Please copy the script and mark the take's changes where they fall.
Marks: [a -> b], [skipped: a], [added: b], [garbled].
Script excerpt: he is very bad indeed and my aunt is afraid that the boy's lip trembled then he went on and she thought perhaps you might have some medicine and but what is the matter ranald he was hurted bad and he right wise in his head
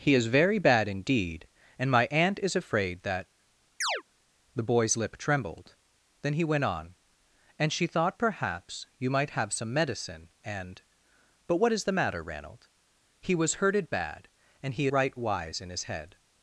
he is very bad indeed and my aunt is afraid that the boy's lip trembled then he went on and she thought perhaps you might have some medicine and but what is the matter ranald he was hurted bad and he right wise in his head